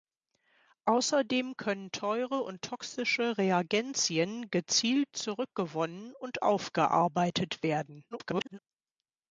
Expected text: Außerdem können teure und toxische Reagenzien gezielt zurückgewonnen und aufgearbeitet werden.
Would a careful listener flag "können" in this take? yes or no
no